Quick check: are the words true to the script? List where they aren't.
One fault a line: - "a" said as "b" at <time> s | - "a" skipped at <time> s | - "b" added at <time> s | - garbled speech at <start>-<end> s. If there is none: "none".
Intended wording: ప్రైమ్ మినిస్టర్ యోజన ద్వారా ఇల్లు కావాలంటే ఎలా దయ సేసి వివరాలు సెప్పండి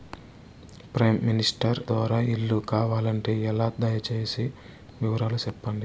- "యోజన" skipped at 1.8 s